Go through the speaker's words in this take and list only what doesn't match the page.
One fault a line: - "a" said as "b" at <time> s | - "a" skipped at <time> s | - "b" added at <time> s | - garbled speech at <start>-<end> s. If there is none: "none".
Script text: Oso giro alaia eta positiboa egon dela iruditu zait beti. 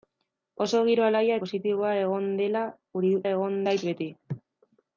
- "eta" skipped at 1.4 s
- "iruditu" said as "egon" at 3.3 s